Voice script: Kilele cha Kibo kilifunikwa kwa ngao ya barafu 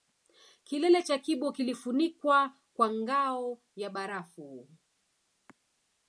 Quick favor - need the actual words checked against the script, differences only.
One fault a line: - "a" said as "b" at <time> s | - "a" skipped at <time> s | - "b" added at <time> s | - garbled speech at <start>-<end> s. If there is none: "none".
none